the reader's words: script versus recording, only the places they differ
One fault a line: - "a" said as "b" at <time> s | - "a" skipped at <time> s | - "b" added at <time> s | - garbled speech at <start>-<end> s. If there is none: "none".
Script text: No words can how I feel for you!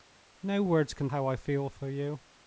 none